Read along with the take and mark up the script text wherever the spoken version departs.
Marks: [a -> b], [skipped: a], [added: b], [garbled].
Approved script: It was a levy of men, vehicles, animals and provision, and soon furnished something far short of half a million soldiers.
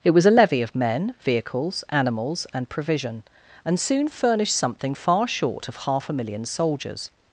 It was a levy of men, vehicles, animals and provision, and soon furnished something far short of half a million soldiers.